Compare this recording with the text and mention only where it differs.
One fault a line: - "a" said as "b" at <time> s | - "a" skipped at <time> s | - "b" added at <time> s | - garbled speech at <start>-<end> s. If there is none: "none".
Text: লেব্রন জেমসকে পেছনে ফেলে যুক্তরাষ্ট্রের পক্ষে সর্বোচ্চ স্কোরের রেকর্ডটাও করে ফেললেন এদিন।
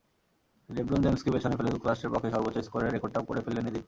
none